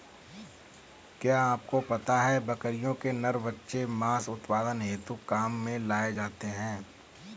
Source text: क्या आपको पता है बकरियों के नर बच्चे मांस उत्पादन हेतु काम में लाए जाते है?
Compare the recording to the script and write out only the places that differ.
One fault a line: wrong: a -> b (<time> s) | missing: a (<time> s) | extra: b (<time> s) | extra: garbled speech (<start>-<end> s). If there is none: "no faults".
no faults